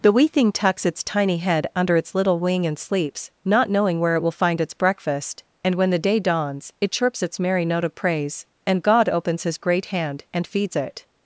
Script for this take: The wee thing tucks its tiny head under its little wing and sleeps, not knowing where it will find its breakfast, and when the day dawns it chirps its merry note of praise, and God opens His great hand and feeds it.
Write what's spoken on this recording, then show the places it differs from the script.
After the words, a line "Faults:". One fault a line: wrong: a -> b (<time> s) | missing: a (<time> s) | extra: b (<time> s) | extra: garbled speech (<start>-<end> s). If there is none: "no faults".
The wee thing tucks its tiny head under its little wing and sleeps, not knowing where it will find its breakfast, and when the day dawns it chirps its merry note of praise, and God opens His great hand and feeds it.
Faults:
no faults